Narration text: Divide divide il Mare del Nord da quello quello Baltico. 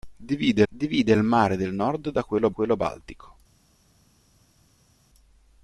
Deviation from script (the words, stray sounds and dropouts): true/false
false